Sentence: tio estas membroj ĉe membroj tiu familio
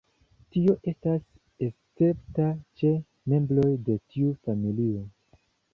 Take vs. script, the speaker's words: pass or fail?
fail